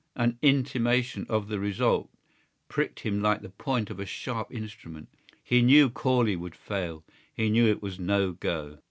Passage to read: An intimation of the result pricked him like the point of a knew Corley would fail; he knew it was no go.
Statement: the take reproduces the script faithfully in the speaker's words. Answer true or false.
false